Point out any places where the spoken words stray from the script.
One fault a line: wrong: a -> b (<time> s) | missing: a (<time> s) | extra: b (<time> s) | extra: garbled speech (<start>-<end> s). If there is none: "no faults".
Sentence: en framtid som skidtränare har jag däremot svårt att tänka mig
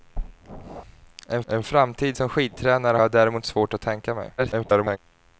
extra: en (1.5 s)
missing: har (3.0 s)
extra: garbled speech (4.4-5.0 s)